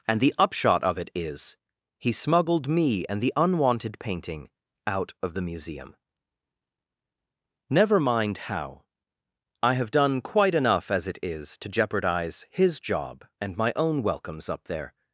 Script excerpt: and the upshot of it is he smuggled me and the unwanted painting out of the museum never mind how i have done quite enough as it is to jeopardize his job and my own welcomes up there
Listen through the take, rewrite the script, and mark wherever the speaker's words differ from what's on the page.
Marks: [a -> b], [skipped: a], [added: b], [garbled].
and the upshot of it is he smuggled me and the unwanted painting out of the museum never mind how i have done quite enough as it is to jeopardize his job and my own welcomes up there